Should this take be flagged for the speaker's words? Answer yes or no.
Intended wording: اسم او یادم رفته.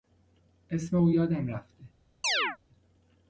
no